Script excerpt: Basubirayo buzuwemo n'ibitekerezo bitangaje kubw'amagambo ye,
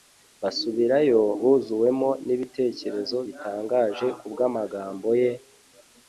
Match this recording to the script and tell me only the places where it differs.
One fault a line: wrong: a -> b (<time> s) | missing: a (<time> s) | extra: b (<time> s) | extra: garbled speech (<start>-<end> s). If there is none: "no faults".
no faults